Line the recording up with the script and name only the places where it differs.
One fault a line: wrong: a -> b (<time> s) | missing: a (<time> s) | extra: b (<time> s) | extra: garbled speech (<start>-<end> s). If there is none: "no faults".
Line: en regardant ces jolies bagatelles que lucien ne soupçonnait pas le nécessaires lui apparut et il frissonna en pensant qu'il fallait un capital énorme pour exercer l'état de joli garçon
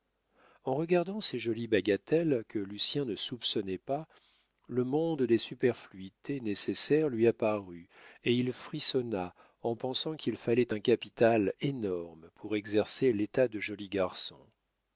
extra: monde des superfluités (4.8 s)